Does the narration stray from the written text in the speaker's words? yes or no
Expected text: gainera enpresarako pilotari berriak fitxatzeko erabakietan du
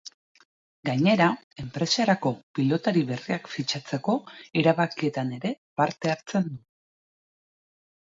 yes